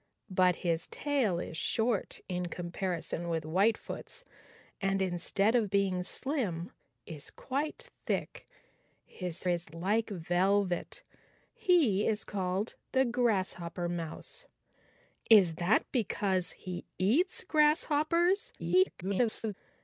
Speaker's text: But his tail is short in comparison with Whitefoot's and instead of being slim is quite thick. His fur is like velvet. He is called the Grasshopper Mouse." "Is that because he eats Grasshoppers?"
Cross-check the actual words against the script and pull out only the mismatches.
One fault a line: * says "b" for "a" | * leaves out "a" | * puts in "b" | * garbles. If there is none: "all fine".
* leaves out "fur"
* garbles